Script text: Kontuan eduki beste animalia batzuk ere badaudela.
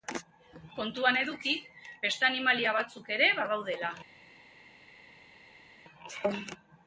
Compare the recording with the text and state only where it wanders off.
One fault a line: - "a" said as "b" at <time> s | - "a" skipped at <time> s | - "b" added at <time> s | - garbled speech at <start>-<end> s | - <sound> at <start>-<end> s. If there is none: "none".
none